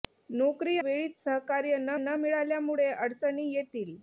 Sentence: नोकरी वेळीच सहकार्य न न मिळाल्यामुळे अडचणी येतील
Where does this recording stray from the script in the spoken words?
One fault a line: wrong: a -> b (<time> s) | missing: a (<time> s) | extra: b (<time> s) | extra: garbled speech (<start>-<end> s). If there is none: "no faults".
no faults